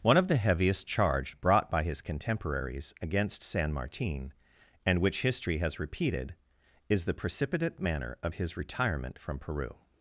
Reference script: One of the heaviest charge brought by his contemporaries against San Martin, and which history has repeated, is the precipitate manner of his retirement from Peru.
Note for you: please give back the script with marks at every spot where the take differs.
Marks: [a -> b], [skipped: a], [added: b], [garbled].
One of the heaviest charge brought by his contemporaries against San Martin, and which history has repeated, is the precipitate manner of his retirement from Peru.